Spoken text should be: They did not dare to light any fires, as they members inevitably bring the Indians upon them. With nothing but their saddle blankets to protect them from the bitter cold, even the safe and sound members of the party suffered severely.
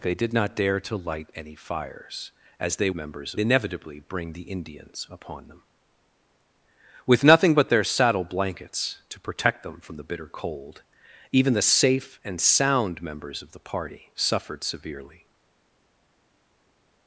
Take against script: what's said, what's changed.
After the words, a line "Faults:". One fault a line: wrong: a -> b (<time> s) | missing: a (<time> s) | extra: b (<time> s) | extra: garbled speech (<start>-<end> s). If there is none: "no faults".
They did not dare to light any fires, as they members inevitably bring the Indians upon them. With nothing but their saddle blankets to protect them from the bitter cold, even the safe and sound members of the party suffered severely.
Faults:
no faults